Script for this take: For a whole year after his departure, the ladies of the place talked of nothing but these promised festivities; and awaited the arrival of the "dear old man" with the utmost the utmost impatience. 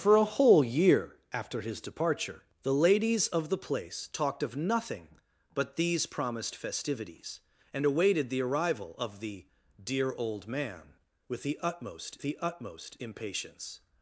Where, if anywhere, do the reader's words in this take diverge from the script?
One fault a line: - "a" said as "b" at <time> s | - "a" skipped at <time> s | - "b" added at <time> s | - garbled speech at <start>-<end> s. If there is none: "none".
none